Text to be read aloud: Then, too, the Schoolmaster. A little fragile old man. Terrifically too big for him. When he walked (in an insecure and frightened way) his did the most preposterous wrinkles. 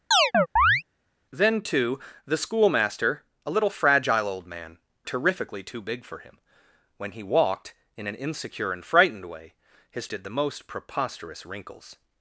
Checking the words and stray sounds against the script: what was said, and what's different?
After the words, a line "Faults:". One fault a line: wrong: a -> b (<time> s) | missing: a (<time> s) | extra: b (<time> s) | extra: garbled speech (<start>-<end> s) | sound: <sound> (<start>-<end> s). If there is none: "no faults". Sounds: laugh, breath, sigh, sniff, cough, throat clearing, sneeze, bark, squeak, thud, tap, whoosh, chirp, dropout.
Then, too, the Schoolmaster. A little fragile old man. Terrifically too big for him. When he walked (in an insecure and frightened way) his did the most preposterous wrinkles.
Faults:
sound: chirp (0.1-0.8 s)